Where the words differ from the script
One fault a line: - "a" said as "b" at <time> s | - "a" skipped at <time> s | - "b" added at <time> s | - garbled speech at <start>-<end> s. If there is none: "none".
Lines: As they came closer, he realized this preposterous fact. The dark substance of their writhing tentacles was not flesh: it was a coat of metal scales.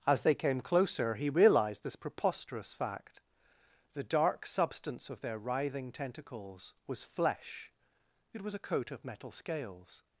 - "not" skipped at 7.0 s